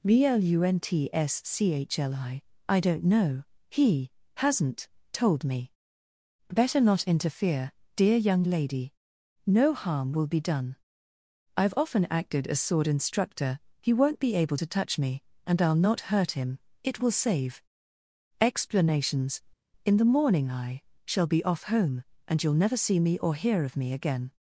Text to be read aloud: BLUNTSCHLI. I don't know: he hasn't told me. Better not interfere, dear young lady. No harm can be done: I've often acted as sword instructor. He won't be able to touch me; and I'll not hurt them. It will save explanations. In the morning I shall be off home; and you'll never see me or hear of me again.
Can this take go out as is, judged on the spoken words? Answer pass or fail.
fail